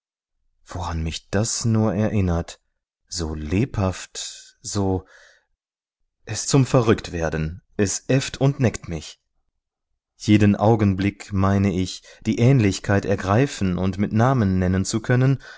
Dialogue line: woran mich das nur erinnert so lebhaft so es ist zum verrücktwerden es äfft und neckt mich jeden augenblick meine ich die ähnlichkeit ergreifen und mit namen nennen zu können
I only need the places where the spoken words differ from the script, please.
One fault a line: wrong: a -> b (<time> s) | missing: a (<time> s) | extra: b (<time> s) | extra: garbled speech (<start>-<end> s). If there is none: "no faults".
missing: ist (6.5 s)